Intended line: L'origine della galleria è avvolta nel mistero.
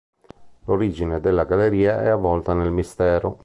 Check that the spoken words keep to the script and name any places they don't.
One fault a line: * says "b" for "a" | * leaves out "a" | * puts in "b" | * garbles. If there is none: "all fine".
all fine